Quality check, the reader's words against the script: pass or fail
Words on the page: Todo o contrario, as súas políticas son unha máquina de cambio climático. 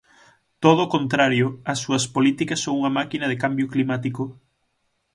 pass